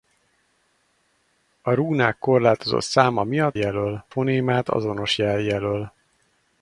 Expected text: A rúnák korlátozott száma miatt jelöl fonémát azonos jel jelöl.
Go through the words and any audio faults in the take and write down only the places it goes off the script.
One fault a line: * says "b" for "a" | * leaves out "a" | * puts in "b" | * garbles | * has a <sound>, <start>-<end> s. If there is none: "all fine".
all fine